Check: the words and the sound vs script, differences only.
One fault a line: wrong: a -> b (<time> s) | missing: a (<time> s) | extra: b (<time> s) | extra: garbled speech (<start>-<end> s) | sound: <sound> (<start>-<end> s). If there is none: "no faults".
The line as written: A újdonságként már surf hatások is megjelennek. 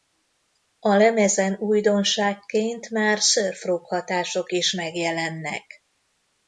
extra: lemezen (0.9 s)
extra: rock (3.6 s)